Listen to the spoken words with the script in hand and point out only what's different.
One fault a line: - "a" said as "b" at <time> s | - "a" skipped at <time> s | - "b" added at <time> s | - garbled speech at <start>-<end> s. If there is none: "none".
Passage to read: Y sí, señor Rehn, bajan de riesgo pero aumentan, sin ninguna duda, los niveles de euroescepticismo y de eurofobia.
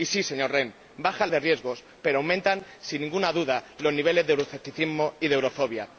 none